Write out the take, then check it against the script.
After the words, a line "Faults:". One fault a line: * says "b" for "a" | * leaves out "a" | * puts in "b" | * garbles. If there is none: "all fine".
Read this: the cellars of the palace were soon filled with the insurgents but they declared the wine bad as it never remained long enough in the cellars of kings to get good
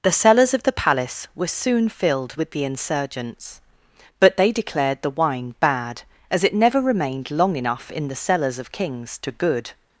the cellars of the palace were soon filled with the insurgents but they declared the wine bad as it never remained long enough in the cellars of kings to good
Faults:
* leaves out "get"